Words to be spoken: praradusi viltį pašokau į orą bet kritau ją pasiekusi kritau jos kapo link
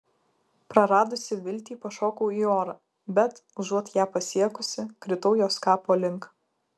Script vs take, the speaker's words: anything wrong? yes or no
yes